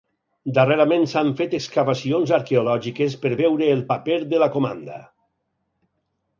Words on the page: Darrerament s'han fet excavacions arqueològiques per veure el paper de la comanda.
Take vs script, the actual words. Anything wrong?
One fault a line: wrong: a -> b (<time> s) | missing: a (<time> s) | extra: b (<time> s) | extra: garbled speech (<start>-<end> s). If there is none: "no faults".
no faults